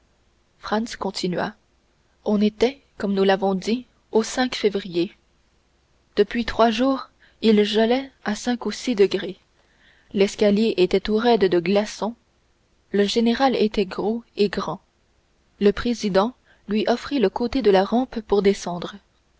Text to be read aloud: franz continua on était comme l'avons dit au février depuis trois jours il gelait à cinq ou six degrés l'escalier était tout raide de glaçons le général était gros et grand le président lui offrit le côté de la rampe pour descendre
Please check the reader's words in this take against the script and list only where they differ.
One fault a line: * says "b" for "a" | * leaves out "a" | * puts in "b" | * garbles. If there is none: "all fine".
* puts in "nous"